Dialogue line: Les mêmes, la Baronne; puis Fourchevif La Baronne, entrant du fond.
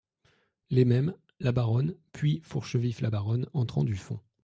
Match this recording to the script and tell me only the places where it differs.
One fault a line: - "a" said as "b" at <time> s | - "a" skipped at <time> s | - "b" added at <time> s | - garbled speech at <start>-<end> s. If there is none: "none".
none